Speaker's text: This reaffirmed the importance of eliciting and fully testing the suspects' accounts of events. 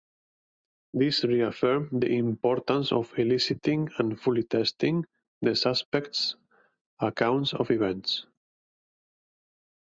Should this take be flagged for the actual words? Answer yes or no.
no